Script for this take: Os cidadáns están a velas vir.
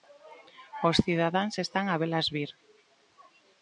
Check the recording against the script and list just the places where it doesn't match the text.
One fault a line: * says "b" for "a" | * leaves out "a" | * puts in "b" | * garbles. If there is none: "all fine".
all fine